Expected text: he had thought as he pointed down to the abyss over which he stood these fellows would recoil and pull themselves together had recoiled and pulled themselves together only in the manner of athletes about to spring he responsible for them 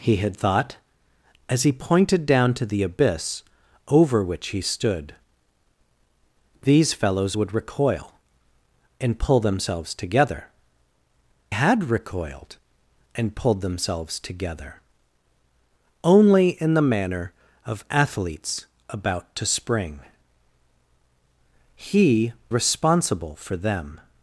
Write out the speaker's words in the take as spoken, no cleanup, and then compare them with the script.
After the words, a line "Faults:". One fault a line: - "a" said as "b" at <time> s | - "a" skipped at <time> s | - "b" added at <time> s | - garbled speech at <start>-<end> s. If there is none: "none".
he had thought as he pointed down to the abyss over which he stood these fellows would recoil and pull themselves together had recoiled and pulled themselves together only in the manner of athletes about to spring he responsible for them
Faults:
none